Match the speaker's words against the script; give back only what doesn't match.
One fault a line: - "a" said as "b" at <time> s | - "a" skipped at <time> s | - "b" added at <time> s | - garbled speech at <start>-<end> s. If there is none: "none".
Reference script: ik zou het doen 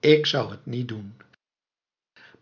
- "niet" added at 0.7 s